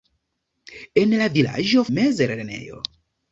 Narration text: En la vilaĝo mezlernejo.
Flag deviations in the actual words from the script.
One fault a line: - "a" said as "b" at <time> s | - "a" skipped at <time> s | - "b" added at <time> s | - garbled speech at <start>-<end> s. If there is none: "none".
none